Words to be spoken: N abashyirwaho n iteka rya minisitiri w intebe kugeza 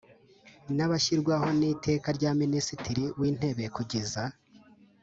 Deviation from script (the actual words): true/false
false